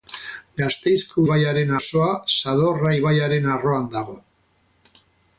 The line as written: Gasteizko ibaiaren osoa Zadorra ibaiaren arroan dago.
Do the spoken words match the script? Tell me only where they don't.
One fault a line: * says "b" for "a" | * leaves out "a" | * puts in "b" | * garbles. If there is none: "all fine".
all fine